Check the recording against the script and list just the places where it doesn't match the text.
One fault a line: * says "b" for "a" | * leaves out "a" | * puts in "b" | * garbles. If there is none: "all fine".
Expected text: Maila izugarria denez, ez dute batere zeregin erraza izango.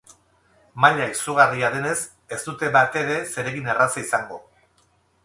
all fine